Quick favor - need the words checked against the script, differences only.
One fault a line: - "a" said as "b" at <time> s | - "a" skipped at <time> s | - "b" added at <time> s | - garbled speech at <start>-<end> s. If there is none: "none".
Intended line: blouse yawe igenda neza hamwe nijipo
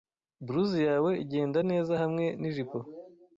none